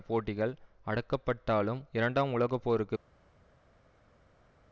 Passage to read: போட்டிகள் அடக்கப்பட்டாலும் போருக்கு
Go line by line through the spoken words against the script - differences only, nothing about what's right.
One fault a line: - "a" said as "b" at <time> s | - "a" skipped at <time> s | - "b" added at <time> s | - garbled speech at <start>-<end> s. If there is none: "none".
- "இரண்டாம் உலக" added at 1.9 s